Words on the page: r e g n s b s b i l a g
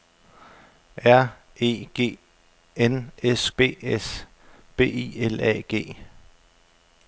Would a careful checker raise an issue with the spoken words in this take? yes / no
no